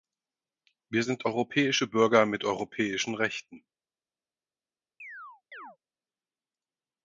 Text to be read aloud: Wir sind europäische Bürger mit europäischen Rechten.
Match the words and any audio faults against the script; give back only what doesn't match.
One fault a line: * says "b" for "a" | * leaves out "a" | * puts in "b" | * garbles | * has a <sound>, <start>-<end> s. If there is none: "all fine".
* has a chirp, 5.0-5.8 s